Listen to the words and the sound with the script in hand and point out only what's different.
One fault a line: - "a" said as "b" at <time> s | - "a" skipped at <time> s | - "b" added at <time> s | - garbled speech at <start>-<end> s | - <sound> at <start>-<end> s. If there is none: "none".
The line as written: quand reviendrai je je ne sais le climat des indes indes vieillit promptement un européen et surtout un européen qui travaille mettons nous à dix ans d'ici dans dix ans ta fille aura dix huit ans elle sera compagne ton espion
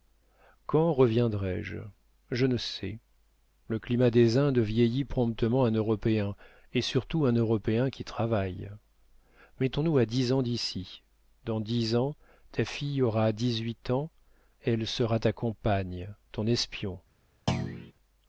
- "indes" skipped at 4.6 s
- "ta" added at 15.2 s
- thud at 17.5-17.9 s